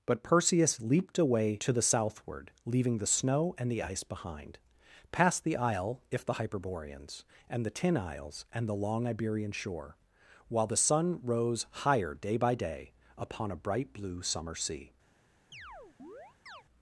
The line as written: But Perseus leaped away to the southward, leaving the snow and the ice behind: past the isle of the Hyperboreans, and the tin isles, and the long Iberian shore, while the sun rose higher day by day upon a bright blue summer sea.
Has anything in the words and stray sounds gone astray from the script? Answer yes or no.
yes